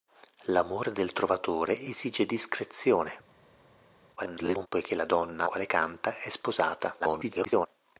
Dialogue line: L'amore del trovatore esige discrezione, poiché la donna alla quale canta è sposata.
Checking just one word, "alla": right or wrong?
wrong